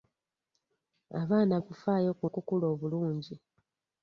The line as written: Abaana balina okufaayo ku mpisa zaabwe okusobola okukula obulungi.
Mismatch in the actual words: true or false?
true